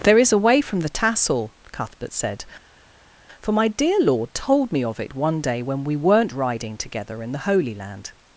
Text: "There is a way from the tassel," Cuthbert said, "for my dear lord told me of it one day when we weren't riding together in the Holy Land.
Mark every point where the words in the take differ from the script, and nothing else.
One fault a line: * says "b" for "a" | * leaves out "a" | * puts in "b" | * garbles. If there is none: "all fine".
all fine